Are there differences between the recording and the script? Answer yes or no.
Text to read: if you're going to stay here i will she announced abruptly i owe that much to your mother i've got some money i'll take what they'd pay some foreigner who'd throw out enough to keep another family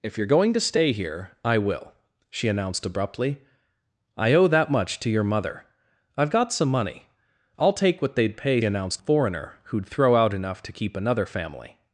yes